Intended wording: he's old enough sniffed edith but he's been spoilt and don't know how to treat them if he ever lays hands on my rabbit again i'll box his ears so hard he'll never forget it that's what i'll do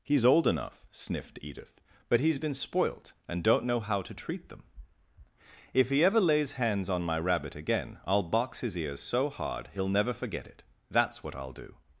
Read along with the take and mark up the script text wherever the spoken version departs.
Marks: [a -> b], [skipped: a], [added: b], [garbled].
he's old enough sniffed edith but he's been spoilt and don't know how to treat them if he ever lays hands on my rabbit again i'll box his ears so hard he'll never forget it that's what i'll do